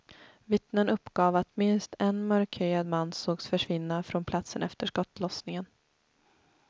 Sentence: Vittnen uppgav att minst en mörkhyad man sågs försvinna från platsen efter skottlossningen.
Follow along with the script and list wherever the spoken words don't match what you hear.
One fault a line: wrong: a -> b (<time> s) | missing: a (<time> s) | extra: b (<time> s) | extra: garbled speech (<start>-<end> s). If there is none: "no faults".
no faults